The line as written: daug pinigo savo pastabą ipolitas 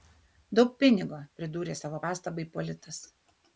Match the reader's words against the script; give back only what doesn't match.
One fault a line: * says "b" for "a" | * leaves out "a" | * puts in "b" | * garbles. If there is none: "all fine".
* puts in "pridūrė"